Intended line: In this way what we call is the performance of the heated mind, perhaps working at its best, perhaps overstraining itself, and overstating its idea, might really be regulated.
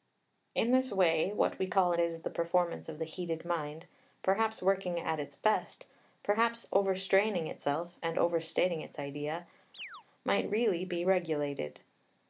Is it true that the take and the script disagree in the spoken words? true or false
false